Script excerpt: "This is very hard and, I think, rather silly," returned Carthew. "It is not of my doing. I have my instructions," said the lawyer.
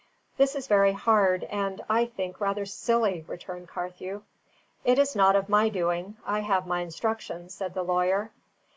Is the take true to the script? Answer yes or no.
yes